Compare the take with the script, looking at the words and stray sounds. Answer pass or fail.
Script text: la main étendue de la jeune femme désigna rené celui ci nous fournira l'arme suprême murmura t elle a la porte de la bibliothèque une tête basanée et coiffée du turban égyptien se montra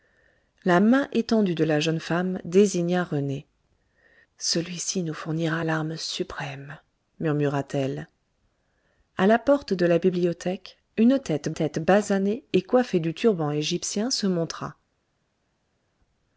fail